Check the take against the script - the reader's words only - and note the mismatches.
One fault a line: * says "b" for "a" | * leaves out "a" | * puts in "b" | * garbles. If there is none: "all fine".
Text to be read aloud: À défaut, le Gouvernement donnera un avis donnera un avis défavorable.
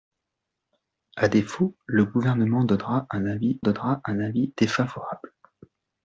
all fine